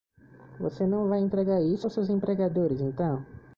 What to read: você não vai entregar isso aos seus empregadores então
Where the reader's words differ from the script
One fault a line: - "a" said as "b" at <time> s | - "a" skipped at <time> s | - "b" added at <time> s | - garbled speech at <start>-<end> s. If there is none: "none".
none